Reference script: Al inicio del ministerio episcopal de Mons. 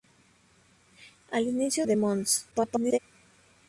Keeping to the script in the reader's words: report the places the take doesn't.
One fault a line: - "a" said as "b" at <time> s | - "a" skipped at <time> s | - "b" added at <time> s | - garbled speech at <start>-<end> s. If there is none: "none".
- "del ministerio episcopal" skipped at 1.9 s
- garbled speech at 2.5-3.0 s